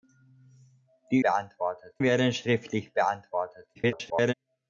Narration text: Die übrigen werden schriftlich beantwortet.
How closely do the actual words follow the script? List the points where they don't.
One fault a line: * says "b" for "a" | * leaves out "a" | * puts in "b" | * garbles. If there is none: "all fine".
* says "beantwortet" for "übrigen"
* garbles